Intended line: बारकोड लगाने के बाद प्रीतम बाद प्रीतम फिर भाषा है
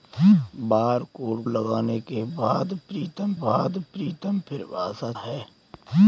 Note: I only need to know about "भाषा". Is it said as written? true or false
true